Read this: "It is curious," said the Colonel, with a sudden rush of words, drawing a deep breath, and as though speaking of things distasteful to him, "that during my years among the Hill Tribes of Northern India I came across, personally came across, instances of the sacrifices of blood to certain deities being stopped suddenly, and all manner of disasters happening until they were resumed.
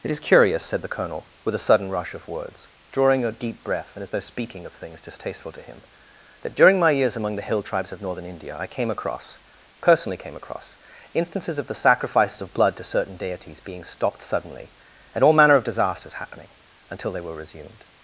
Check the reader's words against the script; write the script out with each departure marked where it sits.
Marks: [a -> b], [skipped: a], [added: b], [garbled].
"It is curious," said the Colonel, with a sudden rush of words, drawing a deep breath, and as though speaking of things distasteful to him, "that during my years among the Hill Tribes of Northern India I came across, personally came across, instances of the sacrifices of blood to certain deities being stopped suddenly, and all manner of disasters happening until they were resumed.